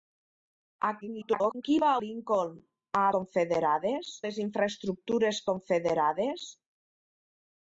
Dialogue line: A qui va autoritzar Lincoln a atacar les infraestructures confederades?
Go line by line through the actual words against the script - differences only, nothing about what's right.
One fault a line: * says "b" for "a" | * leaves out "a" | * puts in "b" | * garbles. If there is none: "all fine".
* garbles
* leaves out "autoritzar"
* says "confederades" for "atacar"